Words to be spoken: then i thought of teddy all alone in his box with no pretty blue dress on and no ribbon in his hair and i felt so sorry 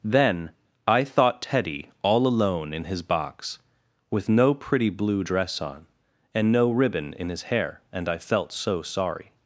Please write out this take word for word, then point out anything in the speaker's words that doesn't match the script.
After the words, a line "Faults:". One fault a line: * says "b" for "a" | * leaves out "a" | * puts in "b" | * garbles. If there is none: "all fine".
then i thought teddy all alone in his box with no pretty blue dress on and no ribbon in his hair and i felt so sorry
Faults:
* leaves out "of"